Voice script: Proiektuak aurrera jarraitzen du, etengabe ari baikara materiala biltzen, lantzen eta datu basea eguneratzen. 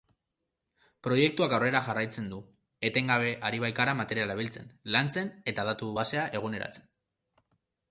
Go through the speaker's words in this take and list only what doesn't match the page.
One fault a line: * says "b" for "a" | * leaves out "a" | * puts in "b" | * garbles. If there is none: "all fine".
all fine